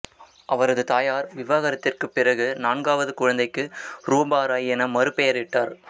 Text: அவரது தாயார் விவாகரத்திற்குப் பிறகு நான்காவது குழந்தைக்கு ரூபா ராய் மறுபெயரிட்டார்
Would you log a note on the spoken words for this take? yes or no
yes